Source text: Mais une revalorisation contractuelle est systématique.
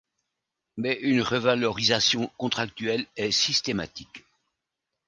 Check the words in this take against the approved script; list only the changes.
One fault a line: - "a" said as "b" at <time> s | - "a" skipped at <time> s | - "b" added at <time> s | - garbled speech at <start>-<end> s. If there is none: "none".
none